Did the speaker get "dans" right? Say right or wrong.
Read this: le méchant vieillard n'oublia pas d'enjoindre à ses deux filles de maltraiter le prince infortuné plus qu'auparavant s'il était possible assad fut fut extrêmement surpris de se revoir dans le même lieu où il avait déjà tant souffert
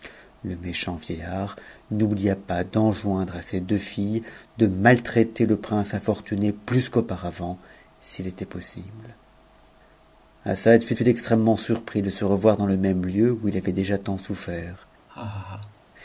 right